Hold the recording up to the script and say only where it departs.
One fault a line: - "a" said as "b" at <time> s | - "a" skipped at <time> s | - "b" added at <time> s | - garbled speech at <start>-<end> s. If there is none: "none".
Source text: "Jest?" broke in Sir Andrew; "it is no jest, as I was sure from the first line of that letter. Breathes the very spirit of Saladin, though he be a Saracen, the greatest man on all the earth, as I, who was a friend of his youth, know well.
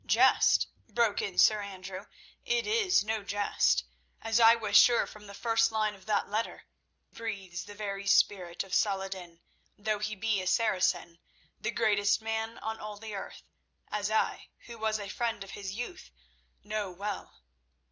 none